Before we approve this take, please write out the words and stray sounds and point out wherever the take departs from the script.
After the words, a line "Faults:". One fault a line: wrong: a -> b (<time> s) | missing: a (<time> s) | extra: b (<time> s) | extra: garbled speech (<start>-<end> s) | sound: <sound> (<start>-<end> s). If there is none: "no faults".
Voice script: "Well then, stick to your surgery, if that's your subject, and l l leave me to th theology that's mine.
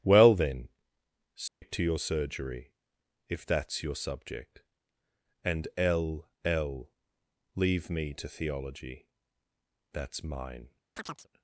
"Well then, stick to your surgery, if that's your subject, and l l leave me to theology that's mine.
Faults:
sound: dropout (1.5-1.6 s)
missing: th (8.3 s)
sound: chirp (11.0-11.3 s)